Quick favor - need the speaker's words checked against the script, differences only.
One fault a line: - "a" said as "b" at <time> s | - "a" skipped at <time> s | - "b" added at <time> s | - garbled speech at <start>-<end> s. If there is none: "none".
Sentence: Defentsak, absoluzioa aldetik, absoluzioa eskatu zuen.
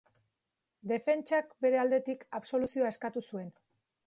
- "absoluzioa" said as "bere" at 1.7 s